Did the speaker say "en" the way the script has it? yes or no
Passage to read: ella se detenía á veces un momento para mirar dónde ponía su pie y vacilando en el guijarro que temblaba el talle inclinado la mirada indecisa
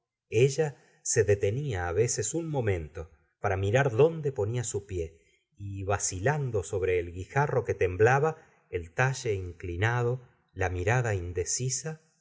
no